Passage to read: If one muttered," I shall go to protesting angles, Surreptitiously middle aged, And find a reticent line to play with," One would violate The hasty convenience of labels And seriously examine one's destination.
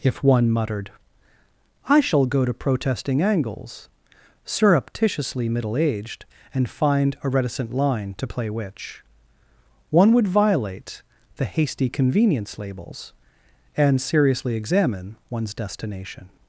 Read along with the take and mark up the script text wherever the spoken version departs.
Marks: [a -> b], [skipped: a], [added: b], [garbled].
If one muttered," I shall go to protesting angles, Surreptitiously middle aged, And find a reticent line to play [with," -> which] One would violate The hasty convenience [skipped: of] labels And seriously examine one's destination.